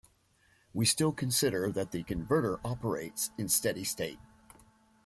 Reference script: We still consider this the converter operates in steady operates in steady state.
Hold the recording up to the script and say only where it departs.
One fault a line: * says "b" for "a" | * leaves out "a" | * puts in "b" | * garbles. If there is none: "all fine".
* says "that" for "this"
* leaves out "operates in steady"